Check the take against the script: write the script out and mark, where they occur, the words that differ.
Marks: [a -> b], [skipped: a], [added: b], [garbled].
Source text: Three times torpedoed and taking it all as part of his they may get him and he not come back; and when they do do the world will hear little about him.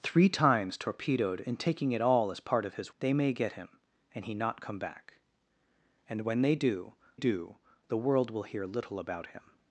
Three times torpedoed and taking it all as part of his they may get him and he not come back; and when they do do the world will hear little about him.